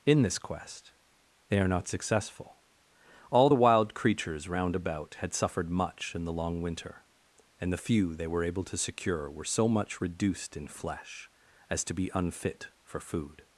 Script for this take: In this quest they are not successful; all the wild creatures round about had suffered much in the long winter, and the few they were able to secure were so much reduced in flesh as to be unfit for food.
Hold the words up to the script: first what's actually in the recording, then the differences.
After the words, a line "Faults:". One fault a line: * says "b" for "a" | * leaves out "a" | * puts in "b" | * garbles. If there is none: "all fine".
In this quest they are not successful; all the wild creatures round about had suffered much in the long winter, and the few they were able to secure were so much reduced in flesh as to be unfit for food.
Faults:
all fine